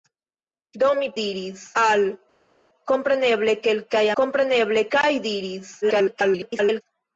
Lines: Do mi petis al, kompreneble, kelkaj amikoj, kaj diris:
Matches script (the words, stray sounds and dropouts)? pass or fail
fail